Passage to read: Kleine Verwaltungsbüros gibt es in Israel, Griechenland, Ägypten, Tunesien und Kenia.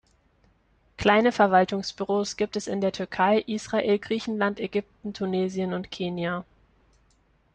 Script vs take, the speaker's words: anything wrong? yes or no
yes